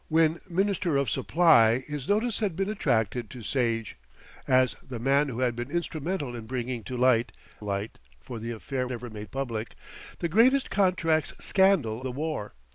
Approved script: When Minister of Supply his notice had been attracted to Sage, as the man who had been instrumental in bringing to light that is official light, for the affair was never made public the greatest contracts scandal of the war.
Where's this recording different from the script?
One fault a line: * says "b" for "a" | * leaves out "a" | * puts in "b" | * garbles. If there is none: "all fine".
* leaves out "that is official"
* leaves out "was"
* leaves out "of"